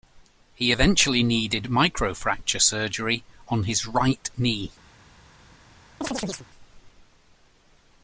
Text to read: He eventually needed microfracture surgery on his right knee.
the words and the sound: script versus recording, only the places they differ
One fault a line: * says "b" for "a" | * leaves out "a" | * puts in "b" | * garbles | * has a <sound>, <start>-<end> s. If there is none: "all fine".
* has a chirp, 6.0-6.5 s